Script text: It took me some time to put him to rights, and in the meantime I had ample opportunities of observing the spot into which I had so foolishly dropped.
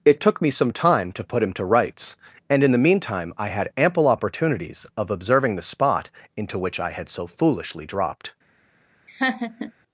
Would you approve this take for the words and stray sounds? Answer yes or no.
no